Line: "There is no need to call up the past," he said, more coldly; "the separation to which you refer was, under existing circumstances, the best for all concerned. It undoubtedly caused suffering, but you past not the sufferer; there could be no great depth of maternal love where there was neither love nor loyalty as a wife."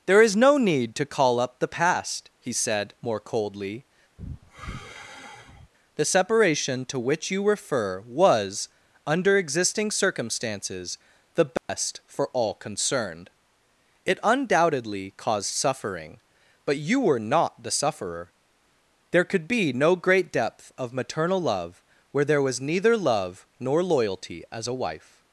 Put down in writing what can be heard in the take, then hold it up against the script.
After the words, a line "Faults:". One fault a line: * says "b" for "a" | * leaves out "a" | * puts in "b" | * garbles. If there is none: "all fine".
"There is no need to call up the past," he said, more coldly; "the separation to which you refer was, under existing circumstances, the best for all concerned. It undoubtedly caused suffering, but you were not the sufferer; there could be no great depth of maternal love where there was neither love nor loyalty as a wife."
Faults:
* says "were" for "past"